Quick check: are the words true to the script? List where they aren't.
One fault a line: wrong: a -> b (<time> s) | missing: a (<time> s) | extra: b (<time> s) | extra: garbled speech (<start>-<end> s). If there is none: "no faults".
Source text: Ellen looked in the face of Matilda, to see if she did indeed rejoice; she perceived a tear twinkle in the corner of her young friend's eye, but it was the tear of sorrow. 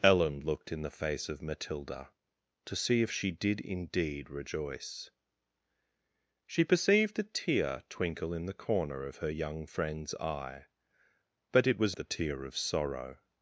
no faults